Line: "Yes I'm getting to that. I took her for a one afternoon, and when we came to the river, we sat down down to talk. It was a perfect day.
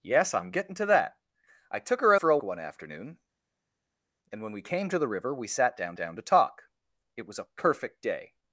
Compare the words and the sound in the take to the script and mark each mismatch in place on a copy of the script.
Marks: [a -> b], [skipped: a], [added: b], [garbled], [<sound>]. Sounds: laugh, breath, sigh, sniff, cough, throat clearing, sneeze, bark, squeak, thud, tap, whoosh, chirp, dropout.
"Yes I'm getting to that. I took her for a one afternoon, and when we came to the river, we sat down down to talk. It was a perfect day.